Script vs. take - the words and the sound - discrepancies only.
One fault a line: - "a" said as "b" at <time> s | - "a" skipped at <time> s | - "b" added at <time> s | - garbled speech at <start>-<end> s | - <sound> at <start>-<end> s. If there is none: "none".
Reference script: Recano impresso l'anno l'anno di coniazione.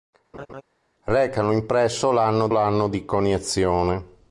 - laugh at 0.3-0.6 s